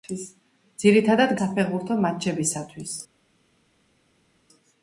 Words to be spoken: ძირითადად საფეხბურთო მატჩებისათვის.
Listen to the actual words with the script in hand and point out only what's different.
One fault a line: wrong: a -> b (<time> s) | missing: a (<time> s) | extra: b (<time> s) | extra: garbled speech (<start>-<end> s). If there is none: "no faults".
no faults